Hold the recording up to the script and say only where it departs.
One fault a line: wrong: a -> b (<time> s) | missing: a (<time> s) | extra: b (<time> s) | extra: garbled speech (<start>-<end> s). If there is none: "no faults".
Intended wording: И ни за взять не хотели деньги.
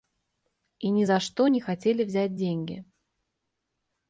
wrong: взять -> что (1.2 s)
extra: взять (2.0 s)